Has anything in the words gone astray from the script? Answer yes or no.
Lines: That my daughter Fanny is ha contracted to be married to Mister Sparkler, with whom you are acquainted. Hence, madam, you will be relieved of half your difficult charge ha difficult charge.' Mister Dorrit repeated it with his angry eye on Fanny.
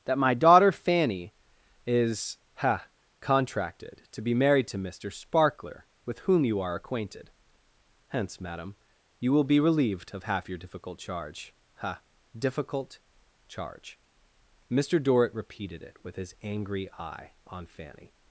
no